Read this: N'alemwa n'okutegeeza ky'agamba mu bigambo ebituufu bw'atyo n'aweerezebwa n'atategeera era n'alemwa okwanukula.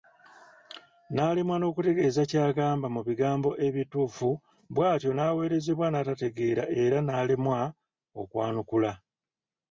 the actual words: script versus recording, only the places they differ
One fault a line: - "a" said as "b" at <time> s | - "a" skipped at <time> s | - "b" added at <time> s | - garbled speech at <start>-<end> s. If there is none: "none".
none